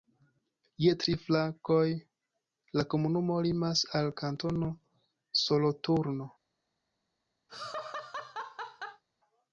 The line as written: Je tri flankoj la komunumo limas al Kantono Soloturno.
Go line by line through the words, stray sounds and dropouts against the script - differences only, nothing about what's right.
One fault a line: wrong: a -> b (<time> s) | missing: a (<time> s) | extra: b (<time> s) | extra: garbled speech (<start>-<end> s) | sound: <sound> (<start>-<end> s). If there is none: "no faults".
sound: laugh (7.5-9.0 s)